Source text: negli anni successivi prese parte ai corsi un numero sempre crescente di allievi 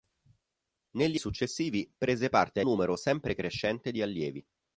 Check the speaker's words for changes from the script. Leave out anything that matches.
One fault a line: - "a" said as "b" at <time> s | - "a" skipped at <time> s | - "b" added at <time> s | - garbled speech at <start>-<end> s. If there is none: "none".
- "anni" skipped at 1.2 s
- "ai corsi un" skipped at 2.6 s